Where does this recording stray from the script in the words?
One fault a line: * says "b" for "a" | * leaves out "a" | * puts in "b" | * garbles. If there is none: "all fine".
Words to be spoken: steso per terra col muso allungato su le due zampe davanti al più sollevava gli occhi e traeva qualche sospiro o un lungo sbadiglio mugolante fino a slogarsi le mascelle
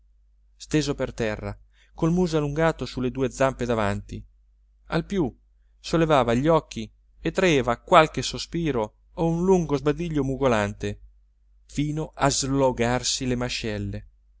all fine